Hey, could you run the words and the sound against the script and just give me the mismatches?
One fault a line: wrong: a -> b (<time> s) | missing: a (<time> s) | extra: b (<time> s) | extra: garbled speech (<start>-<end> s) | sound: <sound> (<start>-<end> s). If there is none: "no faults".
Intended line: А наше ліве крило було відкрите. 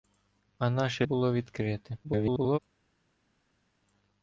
missing: ліве крило (1.1 s)
extra: garbled speech (2.0-2.6 s)